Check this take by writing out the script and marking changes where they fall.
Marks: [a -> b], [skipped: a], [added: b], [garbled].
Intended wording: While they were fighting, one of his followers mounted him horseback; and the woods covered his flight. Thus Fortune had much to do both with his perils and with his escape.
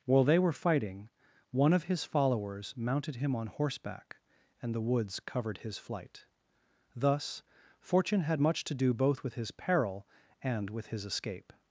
While they were fighting, one of his followers mounted him [added: on] horseback; and the woods covered his flight. Thus Fortune had much to do both with his [perils -> peril] and with his escape.